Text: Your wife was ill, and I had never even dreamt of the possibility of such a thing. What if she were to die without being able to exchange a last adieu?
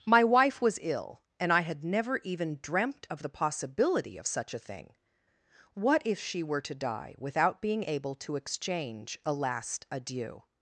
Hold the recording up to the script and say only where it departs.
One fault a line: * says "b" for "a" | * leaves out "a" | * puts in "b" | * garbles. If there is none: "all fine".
* says "My" for "Your"